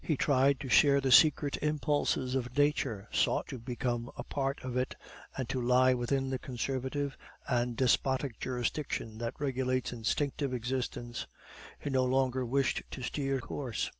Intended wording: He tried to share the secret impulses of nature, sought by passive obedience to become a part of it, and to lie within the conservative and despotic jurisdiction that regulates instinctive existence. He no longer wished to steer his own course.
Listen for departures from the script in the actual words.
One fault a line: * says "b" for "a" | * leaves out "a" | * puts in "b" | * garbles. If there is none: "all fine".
* leaves out "by passive obedience"
* leaves out "his own"